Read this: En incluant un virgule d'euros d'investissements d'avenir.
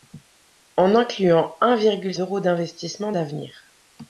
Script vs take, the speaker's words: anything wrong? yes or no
no